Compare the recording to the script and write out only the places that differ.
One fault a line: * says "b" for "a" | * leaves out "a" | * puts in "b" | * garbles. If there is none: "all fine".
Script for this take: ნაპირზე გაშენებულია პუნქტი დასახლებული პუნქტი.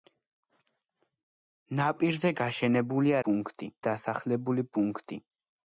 all fine